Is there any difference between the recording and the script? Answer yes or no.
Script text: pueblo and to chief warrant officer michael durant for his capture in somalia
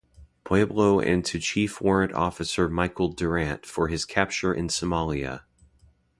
no